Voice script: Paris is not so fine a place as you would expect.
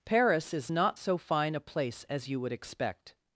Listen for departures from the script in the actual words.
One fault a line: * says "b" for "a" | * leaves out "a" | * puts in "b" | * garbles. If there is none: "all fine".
all fine